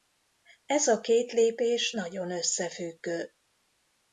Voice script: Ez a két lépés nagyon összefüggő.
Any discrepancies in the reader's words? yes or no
no